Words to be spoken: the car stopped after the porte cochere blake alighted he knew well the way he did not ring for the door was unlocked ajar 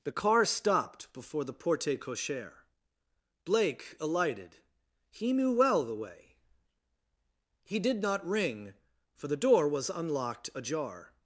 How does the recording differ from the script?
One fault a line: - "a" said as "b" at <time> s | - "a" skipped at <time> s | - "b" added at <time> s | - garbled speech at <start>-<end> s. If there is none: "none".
- "after" said as "before" at 1.1 s